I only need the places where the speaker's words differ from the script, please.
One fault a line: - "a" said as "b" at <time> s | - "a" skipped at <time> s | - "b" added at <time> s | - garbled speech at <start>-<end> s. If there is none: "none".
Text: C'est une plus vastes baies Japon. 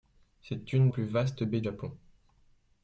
none